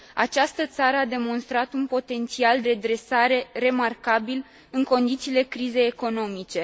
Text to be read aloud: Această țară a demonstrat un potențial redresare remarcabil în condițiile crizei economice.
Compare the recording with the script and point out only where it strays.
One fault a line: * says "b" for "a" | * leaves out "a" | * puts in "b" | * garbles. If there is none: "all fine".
all fine